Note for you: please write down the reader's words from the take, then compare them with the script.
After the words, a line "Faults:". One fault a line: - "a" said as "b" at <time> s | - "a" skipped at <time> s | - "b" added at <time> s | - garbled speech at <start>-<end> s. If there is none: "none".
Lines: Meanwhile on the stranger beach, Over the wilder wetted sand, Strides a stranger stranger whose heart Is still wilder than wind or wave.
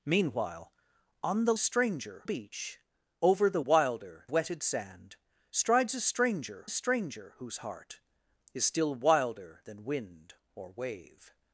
Meanwhile on the stranger beach, Over the wilder wetted sand, Strides a stranger stranger whose heart Is still wilder than wind or wave.
Faults:
none